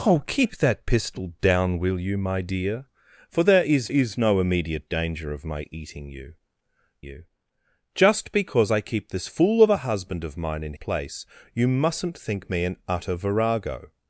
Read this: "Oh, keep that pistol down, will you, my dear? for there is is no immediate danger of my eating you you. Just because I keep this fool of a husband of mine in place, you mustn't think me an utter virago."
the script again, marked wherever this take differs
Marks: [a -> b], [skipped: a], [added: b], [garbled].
"Oh, keep that pistol down, will you, my dear? for there is is no immediate danger of my eating you you. Just because I keep this fool of a husband of mine in place, you mustn't think me an utter virago."